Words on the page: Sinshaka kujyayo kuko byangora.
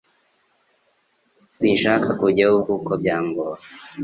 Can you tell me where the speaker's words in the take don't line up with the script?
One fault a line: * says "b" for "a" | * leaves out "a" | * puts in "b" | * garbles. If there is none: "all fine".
all fine